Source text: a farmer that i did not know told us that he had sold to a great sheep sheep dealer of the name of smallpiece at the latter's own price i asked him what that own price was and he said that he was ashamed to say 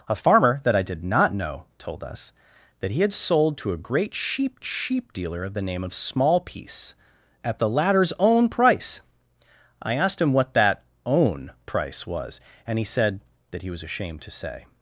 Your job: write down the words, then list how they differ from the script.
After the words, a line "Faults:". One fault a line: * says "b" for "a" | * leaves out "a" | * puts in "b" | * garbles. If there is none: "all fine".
a farmer that i did not know told us that he had sold to a great sheep sheep dealer of the name of smallpiece at the latter's own price i asked him what that own price was and he said that he was ashamed to say
Faults:
all fine